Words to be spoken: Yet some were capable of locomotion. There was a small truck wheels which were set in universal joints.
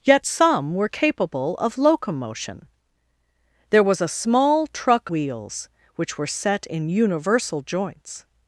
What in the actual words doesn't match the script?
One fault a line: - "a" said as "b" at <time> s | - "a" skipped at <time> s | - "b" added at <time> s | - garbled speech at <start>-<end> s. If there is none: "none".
none